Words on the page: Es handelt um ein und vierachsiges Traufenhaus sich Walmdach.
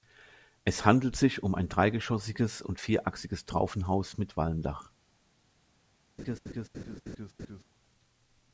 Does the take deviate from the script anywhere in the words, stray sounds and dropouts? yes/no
yes